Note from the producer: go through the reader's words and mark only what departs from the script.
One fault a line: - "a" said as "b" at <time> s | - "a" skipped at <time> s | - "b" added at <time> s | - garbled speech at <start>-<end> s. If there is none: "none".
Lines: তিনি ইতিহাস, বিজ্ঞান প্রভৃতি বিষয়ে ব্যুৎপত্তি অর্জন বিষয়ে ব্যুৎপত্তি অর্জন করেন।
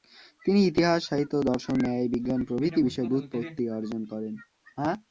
- "বিজ্ঞান প্রভৃতি বিষয়ে ব্যুৎপত্তি অর্জন" said as "সাহিত্য দর্শন ন্যায় বিজ্ঞান প্রভৃতি" at 1.1 s